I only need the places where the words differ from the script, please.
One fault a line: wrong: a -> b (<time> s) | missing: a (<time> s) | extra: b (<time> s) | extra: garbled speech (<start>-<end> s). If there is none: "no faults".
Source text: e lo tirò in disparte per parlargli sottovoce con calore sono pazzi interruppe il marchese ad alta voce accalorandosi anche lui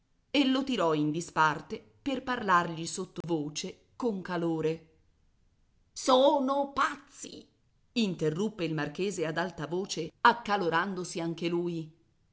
no faults